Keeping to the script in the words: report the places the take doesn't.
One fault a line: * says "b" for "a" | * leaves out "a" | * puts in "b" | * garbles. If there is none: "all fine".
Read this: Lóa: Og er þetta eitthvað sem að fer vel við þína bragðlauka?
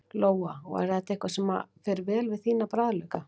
all fine